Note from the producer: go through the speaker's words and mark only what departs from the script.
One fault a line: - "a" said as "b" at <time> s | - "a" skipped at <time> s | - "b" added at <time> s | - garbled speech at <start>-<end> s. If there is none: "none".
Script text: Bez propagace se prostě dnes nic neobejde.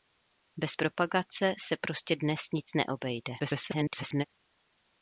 - garbled speech at 3.4-4.3 s